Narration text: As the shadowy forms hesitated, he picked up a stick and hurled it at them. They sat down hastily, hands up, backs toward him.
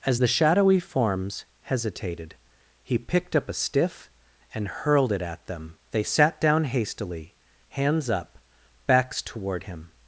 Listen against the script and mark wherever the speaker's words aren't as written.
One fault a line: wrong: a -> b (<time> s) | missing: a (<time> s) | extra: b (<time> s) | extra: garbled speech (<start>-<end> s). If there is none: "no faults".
wrong: stick -> stiff (3.5 s)